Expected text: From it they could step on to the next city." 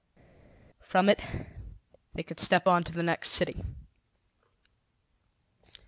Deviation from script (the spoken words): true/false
false